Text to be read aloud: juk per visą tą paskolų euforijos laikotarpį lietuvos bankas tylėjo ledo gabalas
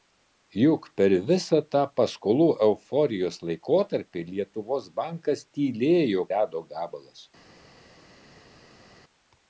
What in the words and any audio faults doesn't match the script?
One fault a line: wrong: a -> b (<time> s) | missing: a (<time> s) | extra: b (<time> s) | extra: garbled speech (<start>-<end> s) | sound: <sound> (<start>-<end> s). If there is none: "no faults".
no faults